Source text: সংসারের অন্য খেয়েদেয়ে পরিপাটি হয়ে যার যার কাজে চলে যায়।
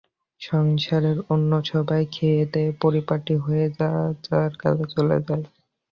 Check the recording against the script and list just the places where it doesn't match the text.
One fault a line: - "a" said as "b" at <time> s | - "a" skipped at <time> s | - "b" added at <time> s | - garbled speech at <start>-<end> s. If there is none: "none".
- "সবাই" added at 1.7 s